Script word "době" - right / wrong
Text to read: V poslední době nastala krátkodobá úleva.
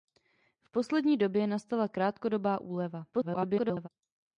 right